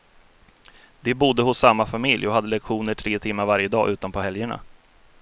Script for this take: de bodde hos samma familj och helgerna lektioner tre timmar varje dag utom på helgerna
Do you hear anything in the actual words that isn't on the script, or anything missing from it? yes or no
yes